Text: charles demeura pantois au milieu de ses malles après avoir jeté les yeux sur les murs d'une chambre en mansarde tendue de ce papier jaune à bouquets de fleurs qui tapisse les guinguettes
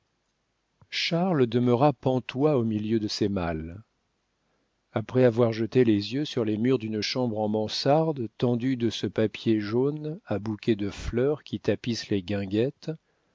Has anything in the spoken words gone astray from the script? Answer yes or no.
no